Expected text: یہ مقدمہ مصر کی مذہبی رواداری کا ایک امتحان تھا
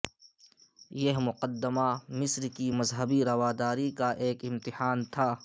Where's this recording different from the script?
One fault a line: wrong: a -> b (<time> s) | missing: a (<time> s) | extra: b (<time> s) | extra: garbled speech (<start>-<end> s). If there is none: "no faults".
no faults